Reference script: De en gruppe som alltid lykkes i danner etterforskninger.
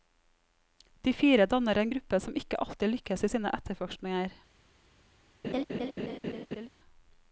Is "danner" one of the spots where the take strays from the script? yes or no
yes